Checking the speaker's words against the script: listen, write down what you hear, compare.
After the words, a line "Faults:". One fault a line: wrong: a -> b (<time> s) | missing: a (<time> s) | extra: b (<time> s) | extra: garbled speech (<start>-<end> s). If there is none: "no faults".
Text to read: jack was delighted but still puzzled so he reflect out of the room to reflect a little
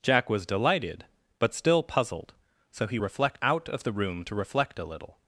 jack was delighted but still puzzled so he reflect out of the room to reflect a little
Faults:
no faults